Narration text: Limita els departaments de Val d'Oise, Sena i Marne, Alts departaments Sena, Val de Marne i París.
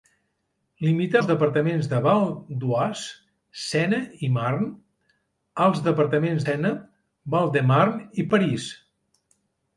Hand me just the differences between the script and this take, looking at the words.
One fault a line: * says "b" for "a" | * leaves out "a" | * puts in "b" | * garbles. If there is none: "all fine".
all fine